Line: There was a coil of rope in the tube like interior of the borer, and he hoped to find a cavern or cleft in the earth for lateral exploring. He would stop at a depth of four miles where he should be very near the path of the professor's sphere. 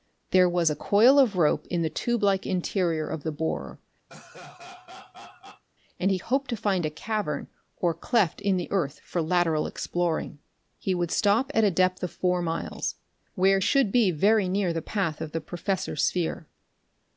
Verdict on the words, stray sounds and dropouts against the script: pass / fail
fail